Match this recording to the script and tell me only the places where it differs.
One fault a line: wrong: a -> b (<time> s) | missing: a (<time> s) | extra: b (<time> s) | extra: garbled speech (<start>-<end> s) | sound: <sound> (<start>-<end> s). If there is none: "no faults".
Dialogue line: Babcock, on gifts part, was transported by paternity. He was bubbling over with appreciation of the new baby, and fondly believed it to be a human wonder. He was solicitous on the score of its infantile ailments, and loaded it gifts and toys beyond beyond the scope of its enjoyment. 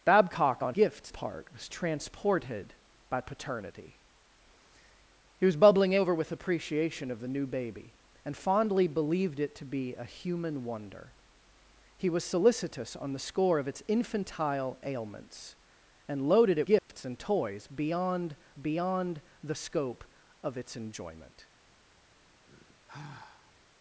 sound: dropout (16.8-16.9 s)
sound: sigh (22.4-23.5 s)